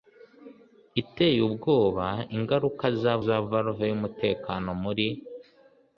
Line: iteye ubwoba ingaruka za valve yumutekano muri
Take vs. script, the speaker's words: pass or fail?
fail